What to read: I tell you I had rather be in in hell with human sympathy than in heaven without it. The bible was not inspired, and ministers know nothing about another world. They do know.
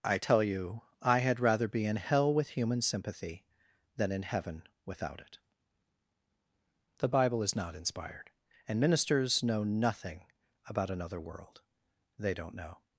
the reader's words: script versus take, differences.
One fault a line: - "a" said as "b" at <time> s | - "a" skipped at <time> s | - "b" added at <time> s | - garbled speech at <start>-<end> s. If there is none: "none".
- "in" skipped at 2.0 s
- "was" said as "is" at 7.4 s
- "do" said as "don't" at 12.3 s